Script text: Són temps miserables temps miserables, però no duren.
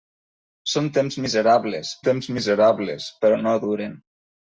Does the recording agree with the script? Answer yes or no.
yes